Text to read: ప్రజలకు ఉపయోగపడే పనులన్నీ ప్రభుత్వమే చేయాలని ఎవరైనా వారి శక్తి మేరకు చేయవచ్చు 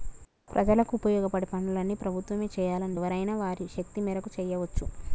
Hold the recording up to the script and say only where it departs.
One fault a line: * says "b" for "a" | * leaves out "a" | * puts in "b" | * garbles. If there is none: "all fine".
all fine